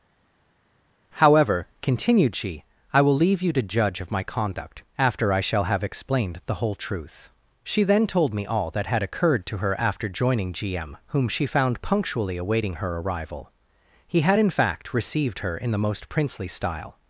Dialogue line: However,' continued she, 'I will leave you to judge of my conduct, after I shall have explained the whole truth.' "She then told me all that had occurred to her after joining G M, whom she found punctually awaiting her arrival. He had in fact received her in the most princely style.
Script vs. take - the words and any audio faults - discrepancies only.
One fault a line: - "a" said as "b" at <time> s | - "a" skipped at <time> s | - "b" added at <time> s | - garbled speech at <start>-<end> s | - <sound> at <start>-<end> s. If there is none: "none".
none